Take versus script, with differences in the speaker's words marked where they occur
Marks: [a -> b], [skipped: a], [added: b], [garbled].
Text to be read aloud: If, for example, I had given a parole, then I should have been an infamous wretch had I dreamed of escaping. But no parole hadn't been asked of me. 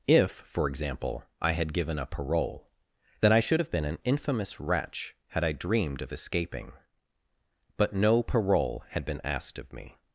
If, for example, I had given a parole, then I should have been an infamous wretch had I dreamed of escaping. But no parole [hadn't -> had] been asked of me.